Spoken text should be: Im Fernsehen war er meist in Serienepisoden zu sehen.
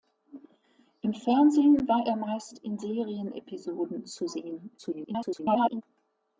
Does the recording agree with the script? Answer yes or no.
no